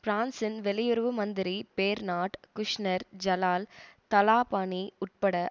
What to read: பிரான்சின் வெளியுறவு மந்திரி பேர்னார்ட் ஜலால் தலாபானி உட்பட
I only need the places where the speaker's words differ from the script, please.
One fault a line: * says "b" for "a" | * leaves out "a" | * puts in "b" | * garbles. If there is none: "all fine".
* puts in "குஷ்நெர்"